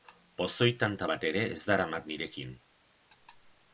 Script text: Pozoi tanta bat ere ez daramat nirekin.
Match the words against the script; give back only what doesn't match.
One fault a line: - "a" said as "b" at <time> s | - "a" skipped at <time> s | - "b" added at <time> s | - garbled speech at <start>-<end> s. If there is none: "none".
none